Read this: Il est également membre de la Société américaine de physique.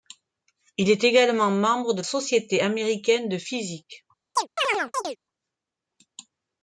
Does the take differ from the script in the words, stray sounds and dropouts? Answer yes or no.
yes